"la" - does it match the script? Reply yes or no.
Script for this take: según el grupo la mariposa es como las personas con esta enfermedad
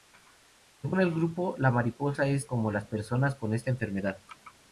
yes